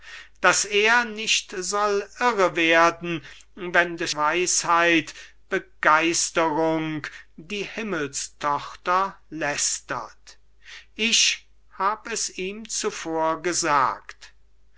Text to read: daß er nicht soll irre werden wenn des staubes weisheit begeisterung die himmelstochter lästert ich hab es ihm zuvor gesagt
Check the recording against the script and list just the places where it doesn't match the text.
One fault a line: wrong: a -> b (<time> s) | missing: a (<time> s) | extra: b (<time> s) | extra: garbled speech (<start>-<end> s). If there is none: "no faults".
missing: staubes (4.1 s)